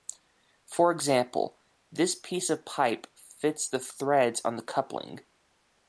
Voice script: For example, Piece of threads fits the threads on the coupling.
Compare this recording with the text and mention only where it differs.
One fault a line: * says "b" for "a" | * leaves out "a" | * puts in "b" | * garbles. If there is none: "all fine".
* puts in "This"
* says "pipe" for "threads"